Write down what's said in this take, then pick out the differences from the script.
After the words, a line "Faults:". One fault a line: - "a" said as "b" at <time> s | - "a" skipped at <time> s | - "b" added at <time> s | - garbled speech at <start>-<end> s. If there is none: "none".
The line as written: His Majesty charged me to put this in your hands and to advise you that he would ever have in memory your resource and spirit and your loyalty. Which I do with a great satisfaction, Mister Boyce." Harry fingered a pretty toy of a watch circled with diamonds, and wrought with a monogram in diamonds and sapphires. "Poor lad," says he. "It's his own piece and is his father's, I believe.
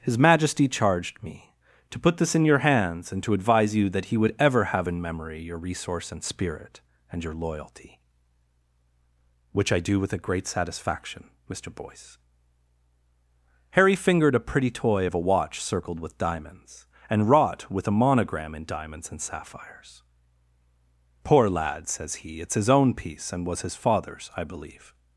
His Majesty charged me to put this in your hands and to advise you that he would ever have in memory your resource and spirit and your loyalty. Which I do with a great satisfaction, Mister Boyce." Harry fingered a pretty toy of a watch circled with diamonds, and wrought with a monogram in diamonds and sapphires. "Poor lad," says he. "It's his own piece and was his father's, I believe.
Faults:
- "is" said as "was" at 23.5 s